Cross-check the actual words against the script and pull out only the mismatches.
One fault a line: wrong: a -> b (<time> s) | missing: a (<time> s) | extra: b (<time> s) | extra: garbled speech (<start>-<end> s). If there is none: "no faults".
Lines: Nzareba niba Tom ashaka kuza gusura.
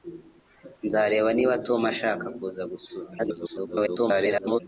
extra: garbled speech (3.2-4.6 s)